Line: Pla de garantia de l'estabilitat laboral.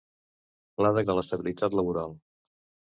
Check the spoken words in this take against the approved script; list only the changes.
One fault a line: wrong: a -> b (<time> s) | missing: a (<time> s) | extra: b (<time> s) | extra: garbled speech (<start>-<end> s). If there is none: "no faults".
missing: garantia (1.0 s)